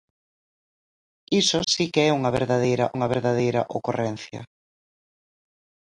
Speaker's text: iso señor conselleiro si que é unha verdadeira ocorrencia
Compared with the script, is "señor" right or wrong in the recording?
wrong